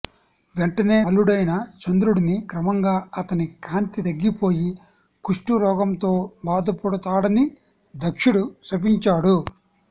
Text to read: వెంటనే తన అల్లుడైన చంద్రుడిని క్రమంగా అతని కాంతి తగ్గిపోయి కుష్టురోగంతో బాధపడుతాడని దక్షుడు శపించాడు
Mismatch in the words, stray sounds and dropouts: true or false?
true